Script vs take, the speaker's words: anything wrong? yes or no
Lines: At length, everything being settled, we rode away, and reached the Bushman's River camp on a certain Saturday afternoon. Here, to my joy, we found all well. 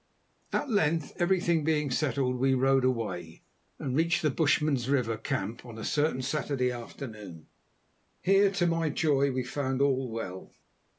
no